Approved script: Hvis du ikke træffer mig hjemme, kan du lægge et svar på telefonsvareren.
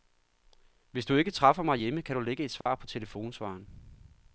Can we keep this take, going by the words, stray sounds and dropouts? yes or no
no